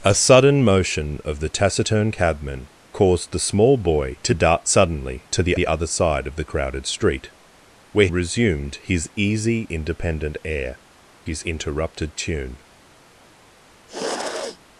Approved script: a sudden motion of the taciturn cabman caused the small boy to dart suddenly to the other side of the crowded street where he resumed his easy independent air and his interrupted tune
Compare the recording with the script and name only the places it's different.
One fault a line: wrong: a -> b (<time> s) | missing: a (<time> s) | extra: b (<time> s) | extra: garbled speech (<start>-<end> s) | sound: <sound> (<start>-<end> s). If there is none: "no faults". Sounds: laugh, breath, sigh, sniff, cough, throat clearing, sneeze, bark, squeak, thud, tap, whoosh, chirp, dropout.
extra: the (5.5 s)
missing: he (8.1 s)
missing: and (10.8 s)
sound: sniff (13.9-14.6 s)